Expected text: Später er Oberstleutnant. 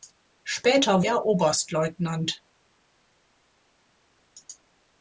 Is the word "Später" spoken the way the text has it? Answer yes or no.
yes